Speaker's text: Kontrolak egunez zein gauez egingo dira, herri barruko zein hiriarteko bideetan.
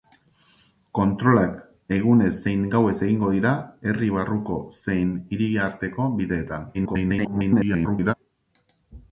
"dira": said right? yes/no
yes